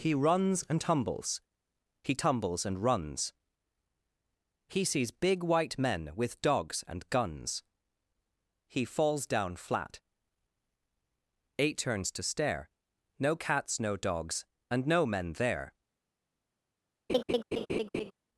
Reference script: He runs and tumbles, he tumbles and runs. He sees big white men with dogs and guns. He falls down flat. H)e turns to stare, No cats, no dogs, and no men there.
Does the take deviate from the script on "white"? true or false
false